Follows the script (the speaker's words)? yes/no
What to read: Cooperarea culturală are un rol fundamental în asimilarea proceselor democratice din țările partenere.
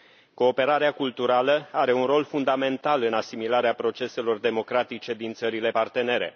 yes